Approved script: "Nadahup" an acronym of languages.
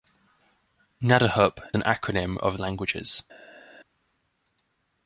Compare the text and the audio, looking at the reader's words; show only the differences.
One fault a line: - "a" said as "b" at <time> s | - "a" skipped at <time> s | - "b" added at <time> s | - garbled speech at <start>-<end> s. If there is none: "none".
none